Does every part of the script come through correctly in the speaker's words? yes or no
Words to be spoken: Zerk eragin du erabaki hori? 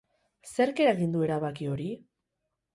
yes